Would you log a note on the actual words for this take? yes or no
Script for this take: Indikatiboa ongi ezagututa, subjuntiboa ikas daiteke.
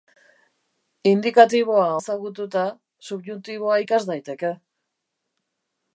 yes